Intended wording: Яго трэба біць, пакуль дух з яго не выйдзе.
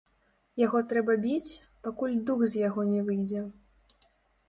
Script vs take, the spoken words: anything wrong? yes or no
no